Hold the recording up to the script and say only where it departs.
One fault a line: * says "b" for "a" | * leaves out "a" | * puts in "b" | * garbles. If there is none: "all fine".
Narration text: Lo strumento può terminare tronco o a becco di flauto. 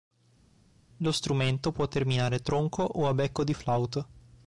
all fine